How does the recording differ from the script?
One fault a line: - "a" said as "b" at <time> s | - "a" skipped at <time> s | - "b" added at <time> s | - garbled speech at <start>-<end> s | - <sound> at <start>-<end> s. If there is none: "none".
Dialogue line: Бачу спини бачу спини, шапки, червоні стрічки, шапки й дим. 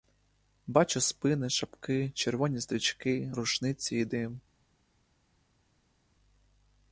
- "бачу спини" skipped at 1.5 s
- "шапки" said as "рушниці" at 3.3 s